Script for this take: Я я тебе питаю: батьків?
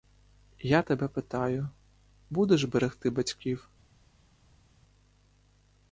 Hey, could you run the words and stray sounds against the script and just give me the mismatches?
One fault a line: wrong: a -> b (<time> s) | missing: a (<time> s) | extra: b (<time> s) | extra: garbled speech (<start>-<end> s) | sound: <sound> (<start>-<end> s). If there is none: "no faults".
missing: я (0.8 s)
extra: будеш берегти (2.3 s)